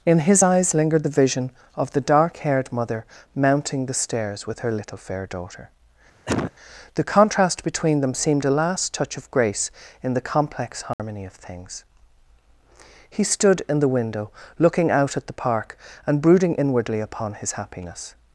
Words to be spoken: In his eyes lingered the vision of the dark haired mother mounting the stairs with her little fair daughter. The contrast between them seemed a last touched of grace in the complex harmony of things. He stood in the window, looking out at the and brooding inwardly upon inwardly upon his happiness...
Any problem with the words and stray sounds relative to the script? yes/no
yes